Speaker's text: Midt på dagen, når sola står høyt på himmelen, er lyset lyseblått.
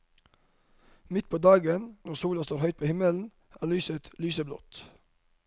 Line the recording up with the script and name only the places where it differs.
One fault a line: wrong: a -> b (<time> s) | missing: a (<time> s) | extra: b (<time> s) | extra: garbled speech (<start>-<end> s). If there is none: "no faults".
no faults